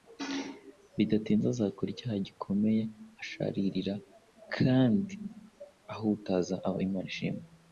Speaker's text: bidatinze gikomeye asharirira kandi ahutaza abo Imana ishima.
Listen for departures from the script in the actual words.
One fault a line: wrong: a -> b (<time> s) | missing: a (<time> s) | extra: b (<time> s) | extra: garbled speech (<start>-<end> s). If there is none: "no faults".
extra: azakora icyaha (1.5 s)